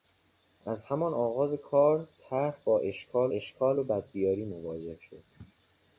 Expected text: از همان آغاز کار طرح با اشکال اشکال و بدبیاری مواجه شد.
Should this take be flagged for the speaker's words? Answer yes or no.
no